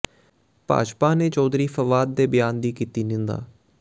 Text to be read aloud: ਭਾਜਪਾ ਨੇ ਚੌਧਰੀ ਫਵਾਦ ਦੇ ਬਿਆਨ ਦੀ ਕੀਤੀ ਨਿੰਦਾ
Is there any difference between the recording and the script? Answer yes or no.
no